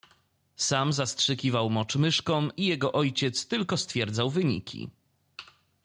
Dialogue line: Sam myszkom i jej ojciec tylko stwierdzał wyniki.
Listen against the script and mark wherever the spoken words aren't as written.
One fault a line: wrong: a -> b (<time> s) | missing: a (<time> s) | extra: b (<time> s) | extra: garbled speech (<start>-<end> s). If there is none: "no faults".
extra: zastrzykiwał mocz (0.9 s)
wrong: jej -> jego (2.6 s)